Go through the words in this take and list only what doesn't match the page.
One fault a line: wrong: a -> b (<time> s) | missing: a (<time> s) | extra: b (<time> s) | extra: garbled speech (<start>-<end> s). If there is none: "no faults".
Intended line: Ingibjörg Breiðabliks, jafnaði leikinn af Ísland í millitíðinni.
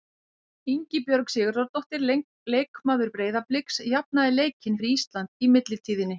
extra: Sigurðardóttir leikmaður (1.3 s)
wrong: af -> fyrir (4.8 s)